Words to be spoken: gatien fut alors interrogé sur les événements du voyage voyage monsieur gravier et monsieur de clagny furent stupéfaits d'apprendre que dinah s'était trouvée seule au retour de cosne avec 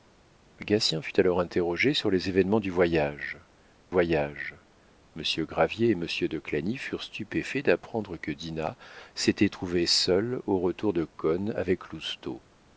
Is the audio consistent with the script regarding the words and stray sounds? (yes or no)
yes